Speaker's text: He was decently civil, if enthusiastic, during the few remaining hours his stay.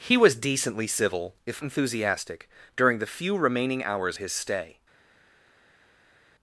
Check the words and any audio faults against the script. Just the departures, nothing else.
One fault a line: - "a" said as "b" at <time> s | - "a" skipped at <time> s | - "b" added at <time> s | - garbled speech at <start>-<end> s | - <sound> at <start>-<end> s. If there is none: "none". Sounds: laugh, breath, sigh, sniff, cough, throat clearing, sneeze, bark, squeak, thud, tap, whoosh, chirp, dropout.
none